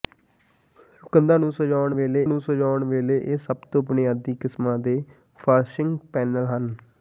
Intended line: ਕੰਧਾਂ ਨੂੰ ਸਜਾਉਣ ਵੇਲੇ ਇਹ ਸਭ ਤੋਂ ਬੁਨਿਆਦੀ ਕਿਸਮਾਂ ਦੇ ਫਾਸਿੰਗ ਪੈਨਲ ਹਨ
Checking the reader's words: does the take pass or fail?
fail